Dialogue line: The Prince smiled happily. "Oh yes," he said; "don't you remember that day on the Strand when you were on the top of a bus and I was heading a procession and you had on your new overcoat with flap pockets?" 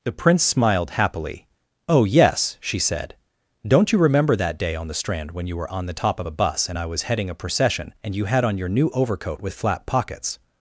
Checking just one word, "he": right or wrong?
wrong